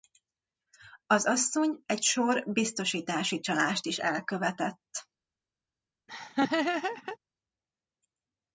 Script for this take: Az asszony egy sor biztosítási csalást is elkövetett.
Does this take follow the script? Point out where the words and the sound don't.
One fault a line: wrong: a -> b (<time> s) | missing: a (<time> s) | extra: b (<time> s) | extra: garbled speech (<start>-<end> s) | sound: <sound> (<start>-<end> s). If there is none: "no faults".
sound: laugh (6.1-7.2 s)